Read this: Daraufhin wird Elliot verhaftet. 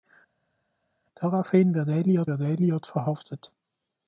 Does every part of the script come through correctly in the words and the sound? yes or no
no